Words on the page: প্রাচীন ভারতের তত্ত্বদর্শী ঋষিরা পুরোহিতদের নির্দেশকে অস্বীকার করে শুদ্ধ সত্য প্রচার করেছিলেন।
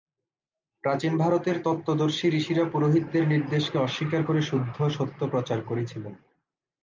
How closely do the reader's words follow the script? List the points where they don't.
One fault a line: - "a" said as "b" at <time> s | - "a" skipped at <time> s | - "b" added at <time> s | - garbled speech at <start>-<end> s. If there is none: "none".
none